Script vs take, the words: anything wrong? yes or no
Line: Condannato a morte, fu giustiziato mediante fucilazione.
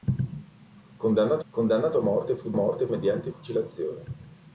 yes